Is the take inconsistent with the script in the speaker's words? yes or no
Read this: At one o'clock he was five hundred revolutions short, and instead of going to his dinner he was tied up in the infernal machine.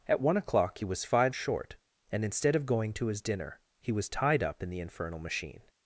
yes